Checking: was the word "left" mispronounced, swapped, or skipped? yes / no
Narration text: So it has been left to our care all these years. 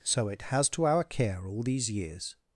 yes